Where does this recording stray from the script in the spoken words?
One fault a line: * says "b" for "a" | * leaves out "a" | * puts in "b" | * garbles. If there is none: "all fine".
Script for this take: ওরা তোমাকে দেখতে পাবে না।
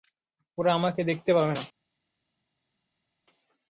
* says "আমাকে" for "তোমাকে"